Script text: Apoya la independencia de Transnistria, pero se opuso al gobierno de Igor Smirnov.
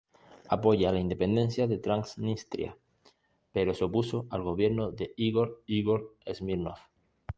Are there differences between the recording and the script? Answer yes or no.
yes